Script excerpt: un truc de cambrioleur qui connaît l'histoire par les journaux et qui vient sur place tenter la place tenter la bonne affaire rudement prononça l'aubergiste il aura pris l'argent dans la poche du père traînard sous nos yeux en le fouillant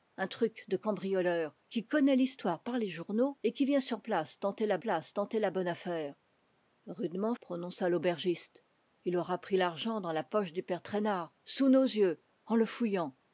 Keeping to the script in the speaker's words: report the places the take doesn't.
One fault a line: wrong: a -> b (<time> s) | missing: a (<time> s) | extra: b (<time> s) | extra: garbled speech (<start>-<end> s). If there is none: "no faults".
no faults